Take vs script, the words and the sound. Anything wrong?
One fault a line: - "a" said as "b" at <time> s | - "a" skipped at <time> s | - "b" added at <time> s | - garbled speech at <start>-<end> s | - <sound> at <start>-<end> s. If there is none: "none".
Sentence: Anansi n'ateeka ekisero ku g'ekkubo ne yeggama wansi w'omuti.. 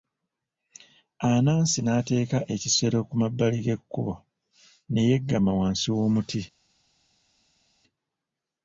- "mabbali" added at 3.2 s